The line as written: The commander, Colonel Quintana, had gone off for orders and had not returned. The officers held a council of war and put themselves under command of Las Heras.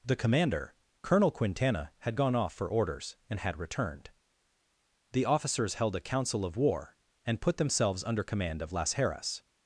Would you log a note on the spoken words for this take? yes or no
yes